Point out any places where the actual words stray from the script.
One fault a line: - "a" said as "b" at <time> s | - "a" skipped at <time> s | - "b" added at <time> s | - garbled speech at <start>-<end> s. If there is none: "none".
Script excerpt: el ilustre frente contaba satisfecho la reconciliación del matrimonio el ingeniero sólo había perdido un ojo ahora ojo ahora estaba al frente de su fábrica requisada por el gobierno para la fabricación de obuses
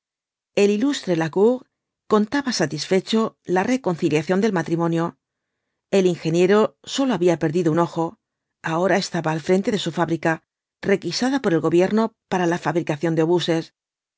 - "frente" said as "lacour" at 1.1 s
- "ojo ahora" skipped at 9.0 s